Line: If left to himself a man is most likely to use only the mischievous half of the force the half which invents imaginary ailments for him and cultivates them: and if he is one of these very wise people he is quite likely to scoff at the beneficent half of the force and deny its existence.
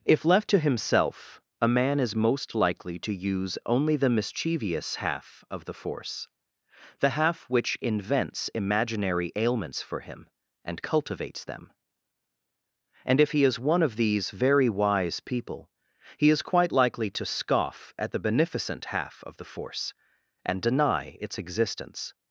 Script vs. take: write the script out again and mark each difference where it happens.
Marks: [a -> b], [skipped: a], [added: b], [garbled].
If left to himself a man is most likely to use only the mischievous half of the force the half which invents imaginary ailments for him and cultivates them: and if he is one of these very wise people he is quite likely to scoff at the beneficent half of the force and deny its existence.